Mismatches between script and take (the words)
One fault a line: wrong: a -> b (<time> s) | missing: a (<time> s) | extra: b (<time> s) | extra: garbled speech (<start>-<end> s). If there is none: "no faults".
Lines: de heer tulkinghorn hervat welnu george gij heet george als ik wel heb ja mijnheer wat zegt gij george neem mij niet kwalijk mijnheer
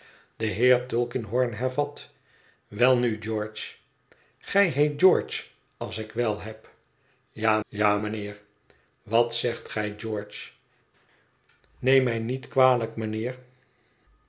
extra: ja (7.7 s)